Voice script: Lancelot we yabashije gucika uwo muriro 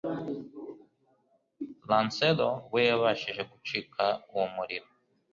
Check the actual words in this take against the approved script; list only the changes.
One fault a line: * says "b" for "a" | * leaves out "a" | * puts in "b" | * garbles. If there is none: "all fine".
all fine